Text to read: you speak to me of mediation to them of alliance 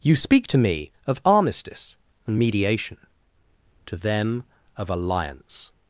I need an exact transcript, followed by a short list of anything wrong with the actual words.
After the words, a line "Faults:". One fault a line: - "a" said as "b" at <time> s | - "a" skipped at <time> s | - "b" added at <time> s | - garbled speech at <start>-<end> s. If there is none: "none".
you speak to me of armistice and mediation to them of alliance
Faults:
- "armistice and" added at 1.2 s